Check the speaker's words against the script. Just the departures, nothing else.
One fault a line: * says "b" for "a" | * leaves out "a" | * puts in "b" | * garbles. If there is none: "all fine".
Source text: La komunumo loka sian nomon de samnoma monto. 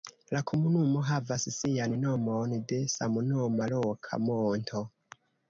* says "havas" for "loka"
* puts in "loka"